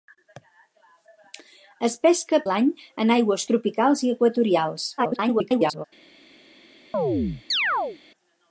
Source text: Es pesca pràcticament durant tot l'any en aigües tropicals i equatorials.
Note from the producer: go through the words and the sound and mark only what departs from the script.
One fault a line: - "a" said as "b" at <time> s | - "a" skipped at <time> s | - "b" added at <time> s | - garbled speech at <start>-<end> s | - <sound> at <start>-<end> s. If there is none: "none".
- "pràcticament durant tot" skipped at 2.4 s
- garbled speech at 5.0-5.8 s
- chirp at 6.9-8.0 s